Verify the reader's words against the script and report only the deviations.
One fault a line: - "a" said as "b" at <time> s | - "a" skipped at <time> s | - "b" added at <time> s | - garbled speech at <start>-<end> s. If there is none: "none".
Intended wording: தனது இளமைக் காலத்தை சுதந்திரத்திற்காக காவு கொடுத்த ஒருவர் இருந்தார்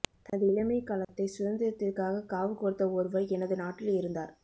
- "எனது நாட்டில்" added at 3.3 s